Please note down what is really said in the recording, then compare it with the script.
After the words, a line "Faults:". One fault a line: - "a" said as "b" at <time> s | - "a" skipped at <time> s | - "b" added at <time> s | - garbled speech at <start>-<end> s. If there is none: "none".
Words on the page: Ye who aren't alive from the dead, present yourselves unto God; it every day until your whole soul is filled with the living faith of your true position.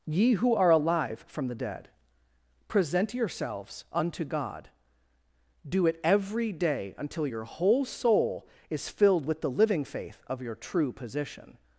Ye who are alive from the dead, present yourselves unto God; do it every day until your whole soul is filled with the living faith of your true position.
Faults:
- "aren't" said as "are" at 0.6 s
- "do" added at 5.7 s